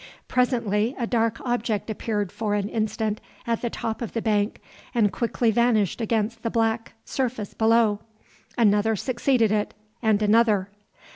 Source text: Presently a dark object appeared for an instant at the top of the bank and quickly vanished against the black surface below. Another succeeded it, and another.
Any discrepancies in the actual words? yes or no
no